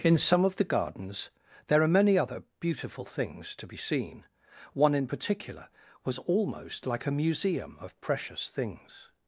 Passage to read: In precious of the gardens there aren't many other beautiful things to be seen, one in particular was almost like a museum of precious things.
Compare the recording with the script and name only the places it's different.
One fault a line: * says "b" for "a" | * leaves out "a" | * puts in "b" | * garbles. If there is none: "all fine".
* says "some" for "precious"
* says "are" for "aren't"